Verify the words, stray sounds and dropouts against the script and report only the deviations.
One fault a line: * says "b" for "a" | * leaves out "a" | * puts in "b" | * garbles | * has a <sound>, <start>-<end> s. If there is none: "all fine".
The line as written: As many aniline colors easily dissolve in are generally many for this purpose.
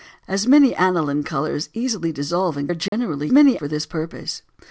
* has a dropout, 2.9-2.9 s